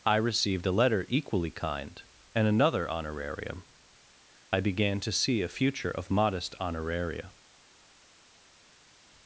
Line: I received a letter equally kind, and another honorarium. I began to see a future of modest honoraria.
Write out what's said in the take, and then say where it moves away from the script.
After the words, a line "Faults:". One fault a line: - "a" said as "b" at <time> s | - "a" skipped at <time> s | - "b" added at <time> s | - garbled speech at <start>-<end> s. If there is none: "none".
I received a letter equally kind, and another honorarium. I began to see a future of modest honoraria.
Faults:
none